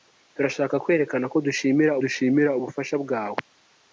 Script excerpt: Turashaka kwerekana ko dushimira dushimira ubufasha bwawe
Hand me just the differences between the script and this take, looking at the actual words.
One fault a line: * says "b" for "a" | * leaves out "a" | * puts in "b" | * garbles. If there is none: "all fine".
all fine